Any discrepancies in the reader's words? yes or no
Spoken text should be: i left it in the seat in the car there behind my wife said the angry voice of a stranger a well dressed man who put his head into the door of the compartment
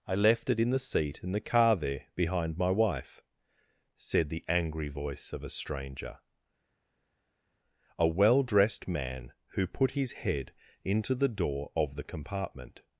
no